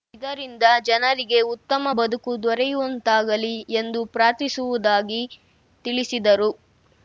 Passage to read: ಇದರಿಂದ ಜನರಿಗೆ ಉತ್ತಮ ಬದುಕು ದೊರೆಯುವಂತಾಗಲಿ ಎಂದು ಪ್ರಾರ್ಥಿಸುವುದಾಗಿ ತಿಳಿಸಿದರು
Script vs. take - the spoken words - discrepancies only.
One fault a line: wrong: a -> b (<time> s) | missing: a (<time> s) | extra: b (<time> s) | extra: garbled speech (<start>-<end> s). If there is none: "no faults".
no faults